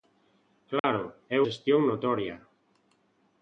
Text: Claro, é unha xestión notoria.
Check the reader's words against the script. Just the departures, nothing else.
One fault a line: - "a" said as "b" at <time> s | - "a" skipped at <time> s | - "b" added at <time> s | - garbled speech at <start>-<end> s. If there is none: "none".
- "unha" skipped at 1.4 s